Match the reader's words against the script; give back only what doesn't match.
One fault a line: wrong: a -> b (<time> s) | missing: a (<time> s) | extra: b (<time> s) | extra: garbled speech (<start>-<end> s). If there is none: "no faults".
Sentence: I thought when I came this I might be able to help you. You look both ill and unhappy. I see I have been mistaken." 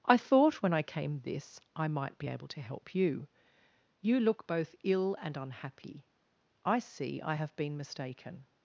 no faults